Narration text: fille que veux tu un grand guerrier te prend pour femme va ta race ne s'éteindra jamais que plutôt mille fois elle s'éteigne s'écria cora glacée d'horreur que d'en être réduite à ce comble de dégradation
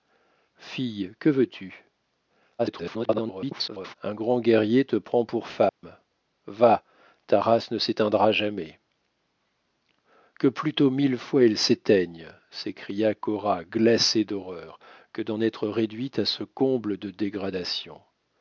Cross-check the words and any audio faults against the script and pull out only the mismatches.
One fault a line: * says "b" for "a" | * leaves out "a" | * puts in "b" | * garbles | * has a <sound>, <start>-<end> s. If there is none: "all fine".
* garbles
* has a dropout, 5.7-5.8 s